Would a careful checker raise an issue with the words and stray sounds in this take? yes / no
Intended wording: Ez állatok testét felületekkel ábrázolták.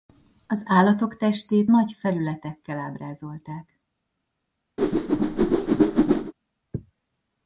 yes